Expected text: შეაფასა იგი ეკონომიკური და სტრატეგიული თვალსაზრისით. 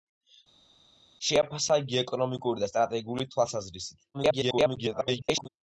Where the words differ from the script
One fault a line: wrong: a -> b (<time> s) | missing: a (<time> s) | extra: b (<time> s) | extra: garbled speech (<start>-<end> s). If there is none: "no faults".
extra: garbled speech (4.1-5.5 s)